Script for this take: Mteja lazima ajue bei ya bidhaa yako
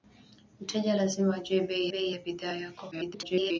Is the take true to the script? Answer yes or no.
no